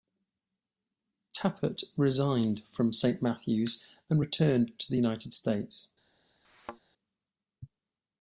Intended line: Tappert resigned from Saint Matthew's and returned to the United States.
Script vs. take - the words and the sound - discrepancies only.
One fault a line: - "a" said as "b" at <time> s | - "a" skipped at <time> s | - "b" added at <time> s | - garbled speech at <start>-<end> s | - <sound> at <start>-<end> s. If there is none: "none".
- thud at 6.4-6.8 s